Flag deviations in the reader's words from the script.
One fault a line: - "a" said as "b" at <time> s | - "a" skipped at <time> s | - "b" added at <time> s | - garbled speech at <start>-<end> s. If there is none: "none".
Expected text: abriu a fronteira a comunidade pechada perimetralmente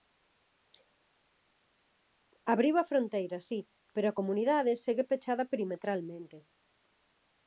- "si pero" added at 3.5 s
- "segue" added at 4.8 s